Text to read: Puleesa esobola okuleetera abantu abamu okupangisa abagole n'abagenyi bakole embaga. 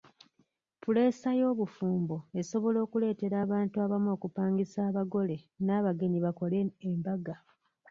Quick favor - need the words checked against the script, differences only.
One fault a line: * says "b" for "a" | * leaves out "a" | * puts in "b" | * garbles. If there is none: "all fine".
* puts in "y'obufumbo"